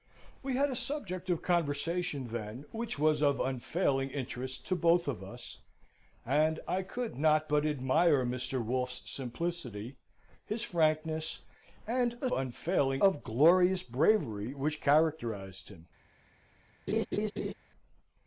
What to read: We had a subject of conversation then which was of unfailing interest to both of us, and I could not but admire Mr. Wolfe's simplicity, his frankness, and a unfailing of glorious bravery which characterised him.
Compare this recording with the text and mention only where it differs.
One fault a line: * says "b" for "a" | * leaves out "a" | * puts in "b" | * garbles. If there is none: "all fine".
all fine